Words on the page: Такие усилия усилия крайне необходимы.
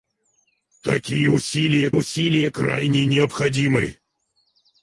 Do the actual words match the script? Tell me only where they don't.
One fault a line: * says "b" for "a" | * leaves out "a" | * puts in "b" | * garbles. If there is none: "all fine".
all fine